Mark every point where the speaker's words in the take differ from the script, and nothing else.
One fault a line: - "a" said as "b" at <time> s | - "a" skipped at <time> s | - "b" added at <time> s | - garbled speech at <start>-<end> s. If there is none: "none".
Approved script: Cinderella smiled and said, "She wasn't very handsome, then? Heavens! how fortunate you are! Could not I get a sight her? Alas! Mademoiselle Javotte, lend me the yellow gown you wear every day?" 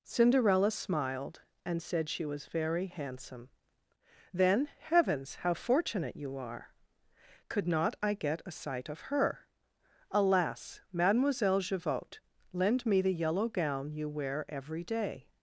- "wasn't" said as "was" at 2.2 s
- "of" added at 8.9 s